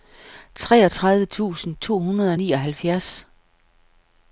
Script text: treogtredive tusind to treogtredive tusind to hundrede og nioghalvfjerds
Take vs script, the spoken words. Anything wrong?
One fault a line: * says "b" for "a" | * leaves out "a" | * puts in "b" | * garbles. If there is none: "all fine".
* leaves out "treogtredive tusind to"